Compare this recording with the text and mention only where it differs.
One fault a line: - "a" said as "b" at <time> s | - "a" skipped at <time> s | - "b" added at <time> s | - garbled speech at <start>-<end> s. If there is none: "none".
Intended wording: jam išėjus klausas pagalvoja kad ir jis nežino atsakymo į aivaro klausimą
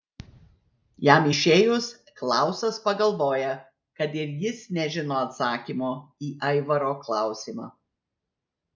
none